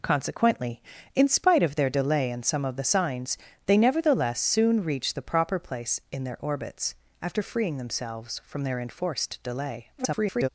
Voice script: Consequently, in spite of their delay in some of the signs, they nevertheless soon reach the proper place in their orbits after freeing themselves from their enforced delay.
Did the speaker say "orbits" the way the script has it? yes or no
yes